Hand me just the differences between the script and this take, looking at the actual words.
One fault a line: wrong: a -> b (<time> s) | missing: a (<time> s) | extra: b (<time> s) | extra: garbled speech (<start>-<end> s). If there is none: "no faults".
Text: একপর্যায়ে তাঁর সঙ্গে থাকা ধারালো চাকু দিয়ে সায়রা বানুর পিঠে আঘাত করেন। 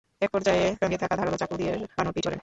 missing: তাঁর (0.7 s)
missing: সায়রা (1.7 s)
missing: আঘাত (2.3 s)